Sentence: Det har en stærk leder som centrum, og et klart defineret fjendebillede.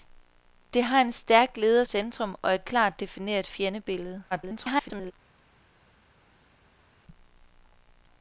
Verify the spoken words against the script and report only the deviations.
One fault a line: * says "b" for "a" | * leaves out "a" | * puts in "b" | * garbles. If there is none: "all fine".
* leaves out "som"
* garbles